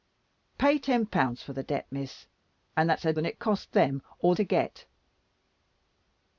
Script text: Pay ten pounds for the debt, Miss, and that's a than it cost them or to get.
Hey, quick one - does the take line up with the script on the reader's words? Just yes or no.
yes